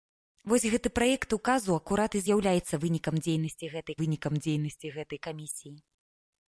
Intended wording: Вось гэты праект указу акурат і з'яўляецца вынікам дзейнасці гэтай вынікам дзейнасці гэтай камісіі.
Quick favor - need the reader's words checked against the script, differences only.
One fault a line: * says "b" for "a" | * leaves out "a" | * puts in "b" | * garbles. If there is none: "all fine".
all fine